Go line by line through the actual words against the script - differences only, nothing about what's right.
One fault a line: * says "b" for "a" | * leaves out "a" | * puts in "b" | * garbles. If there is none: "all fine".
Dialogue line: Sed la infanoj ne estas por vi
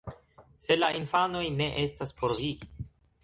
all fine